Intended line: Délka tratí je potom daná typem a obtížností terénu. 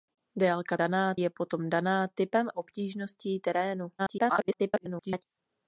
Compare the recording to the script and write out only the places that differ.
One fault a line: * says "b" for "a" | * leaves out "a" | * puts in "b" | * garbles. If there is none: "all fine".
* says "daná" for "tratí"
* leaves out "a"
* garbles